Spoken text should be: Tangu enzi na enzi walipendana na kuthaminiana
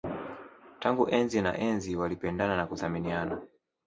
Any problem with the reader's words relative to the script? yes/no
no